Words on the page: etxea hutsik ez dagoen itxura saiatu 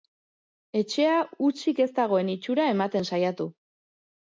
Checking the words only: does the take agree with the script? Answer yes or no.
no